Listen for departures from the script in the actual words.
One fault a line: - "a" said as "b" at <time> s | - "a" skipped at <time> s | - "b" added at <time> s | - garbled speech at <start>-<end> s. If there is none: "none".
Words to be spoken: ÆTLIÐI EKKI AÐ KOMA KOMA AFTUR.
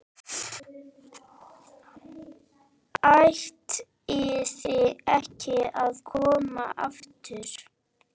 - "KOMA" skipped at 6.7 s